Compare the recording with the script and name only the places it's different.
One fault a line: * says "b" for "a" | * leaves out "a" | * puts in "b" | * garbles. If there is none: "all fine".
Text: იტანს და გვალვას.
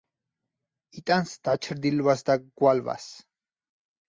* puts in "დაჩრდილვას"